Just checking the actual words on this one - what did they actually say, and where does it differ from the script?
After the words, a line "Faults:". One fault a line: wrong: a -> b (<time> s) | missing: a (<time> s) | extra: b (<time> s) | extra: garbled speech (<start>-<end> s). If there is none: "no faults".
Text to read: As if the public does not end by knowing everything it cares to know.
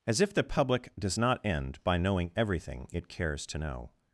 As if the public does not end by knowing everything it cares to know.
Faults:
no faults